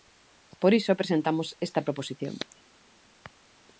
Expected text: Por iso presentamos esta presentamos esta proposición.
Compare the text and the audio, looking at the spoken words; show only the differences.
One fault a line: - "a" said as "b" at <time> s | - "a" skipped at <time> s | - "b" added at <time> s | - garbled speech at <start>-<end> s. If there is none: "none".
- "presentamos esta" skipped at 1.8 s